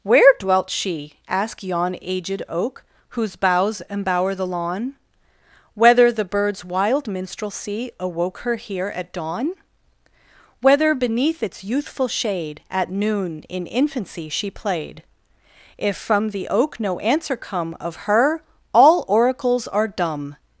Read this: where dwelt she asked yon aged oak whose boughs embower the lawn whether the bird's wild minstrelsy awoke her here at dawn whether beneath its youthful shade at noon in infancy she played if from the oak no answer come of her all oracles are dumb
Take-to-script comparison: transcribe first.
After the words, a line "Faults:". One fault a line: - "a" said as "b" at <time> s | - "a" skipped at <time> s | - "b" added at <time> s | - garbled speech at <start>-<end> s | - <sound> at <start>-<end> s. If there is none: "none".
where dwelt she asked yon aged oak whose boughs embower the lawn whether the bird's wild minstrelsy awoke her here at dawn whether beneath its youthful shade at noon in infancy she played if from the oak no answer come of her all oracles are dumb
Faults:
none